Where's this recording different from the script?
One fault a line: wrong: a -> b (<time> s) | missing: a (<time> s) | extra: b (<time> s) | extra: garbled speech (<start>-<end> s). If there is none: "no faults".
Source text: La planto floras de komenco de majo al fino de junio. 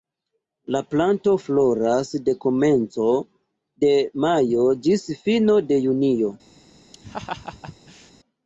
wrong: al -> ĝis (4.9 s)